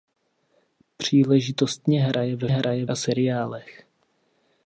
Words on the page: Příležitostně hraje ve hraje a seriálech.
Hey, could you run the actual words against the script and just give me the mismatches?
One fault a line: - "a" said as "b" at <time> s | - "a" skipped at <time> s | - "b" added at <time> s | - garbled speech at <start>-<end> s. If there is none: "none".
none